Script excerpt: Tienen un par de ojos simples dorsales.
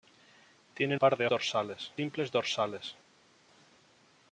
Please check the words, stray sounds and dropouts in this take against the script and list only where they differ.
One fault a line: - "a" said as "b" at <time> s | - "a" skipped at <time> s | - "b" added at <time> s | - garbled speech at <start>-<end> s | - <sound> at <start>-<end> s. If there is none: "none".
- "un" skipped at 1.0 s
- "ojos" said as "dorsales" at 1.3 s